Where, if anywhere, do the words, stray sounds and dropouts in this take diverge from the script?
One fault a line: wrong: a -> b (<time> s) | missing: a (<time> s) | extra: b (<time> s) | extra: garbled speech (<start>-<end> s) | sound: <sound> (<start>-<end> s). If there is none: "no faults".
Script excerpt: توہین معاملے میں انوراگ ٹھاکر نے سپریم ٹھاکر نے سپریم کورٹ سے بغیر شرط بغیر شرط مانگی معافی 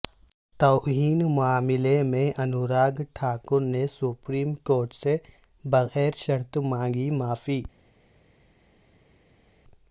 missing: ٹھاکر نے سپریم (4.5 s)
missing: بغیر شرط (6.6 s)